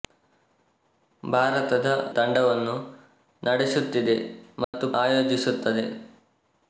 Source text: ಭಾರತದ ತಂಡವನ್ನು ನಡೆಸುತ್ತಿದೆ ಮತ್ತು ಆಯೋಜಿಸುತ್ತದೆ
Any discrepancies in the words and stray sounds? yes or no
yes